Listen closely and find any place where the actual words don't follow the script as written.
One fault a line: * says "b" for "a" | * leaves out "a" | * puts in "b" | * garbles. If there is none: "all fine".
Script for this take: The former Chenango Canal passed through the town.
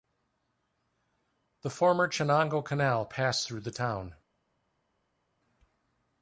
all fine